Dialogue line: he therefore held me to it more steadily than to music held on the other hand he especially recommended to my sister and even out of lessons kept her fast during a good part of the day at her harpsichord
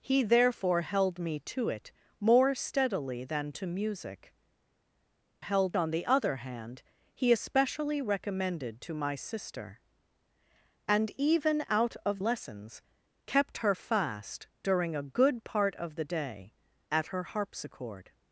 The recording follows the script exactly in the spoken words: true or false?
true